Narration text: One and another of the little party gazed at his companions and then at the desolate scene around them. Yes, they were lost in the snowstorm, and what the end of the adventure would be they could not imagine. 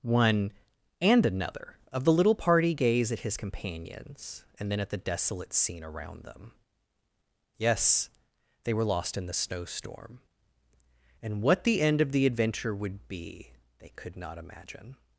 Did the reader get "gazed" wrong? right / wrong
wrong